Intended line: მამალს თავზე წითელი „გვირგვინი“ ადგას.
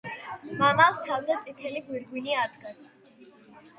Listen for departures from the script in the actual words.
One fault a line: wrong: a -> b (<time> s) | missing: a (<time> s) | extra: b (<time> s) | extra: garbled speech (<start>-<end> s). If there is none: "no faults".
no faults